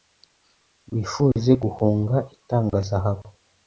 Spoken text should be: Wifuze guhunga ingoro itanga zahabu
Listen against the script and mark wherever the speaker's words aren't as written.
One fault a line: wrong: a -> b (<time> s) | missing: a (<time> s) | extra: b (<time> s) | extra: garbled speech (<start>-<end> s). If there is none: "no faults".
missing: ingoro (2.2 s)